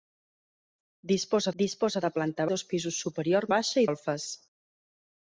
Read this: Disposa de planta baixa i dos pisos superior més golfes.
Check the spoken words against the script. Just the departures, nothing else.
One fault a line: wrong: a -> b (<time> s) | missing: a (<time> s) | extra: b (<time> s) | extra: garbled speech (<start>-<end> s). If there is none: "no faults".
extra: disposa (1.6 s)
missing: baixa (2.5 s)
wrong: més -> baixa (3.5 s)